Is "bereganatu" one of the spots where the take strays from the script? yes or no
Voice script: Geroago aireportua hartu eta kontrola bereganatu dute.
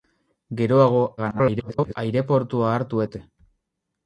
yes